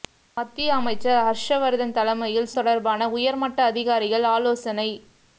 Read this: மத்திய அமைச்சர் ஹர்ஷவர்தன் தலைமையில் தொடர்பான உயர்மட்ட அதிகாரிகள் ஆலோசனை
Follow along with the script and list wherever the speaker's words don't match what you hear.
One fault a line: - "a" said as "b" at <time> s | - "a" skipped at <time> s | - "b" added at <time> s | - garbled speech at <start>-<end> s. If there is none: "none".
none